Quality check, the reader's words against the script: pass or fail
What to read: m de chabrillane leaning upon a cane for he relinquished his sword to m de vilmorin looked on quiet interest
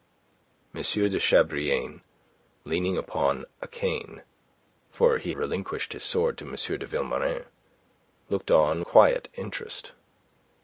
pass